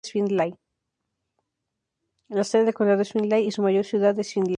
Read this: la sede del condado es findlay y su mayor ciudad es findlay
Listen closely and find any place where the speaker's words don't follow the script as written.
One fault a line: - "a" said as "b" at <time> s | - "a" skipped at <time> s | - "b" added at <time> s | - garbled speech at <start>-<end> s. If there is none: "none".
none